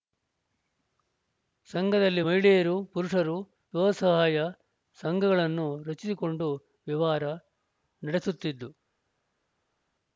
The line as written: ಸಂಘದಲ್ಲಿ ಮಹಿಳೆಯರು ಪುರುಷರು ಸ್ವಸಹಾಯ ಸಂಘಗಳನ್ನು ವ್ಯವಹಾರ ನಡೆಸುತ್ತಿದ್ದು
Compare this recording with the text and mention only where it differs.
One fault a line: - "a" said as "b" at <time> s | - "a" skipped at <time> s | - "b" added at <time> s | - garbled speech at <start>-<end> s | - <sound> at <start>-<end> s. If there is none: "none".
- "ರಚಿಸಿಕೊಂಡು" added at 5.8 s